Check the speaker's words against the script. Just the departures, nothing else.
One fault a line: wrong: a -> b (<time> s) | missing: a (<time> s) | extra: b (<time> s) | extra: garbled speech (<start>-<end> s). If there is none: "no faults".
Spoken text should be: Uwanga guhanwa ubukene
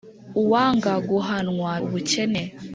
no faults